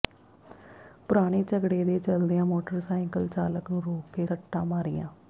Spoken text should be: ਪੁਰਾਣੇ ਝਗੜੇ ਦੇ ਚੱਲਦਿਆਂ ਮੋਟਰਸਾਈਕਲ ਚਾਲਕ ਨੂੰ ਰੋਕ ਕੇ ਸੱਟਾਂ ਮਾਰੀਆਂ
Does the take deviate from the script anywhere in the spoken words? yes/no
no